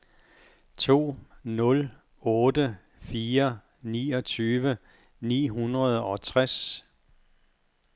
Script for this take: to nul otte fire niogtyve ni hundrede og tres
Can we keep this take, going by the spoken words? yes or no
yes